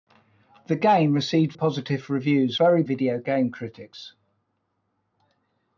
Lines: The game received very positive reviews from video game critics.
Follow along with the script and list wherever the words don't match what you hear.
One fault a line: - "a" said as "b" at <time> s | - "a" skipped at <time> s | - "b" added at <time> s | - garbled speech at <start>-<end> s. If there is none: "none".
- "very" skipped at 1.5 s
- "from" said as "very" at 2.5 s